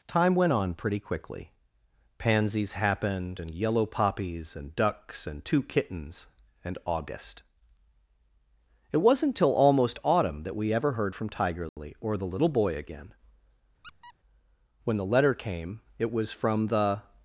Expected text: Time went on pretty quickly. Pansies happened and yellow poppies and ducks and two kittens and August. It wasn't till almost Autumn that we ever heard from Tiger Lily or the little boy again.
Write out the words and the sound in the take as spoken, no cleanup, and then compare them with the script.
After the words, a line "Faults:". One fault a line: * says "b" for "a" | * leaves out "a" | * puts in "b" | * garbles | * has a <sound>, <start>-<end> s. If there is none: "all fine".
Time went on pretty quickly. Pansies happened and yellow poppies and ducks and two kittens and August. It wasn't till almost Autumn that we ever heard from Tiger Lily or the little boy again. When the letter came it was from the
Faults:
* has a dropout, 11.7-11.8 s
* has a squeak, 13.8-14.1 s
* puts in "When the letter came it was from the"